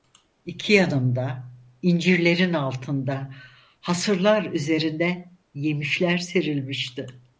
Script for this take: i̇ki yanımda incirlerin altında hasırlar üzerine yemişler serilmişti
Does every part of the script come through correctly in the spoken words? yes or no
yes